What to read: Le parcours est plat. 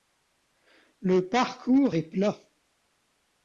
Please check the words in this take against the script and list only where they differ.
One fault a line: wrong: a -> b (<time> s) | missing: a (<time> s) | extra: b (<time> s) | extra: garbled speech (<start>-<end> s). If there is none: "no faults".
no faults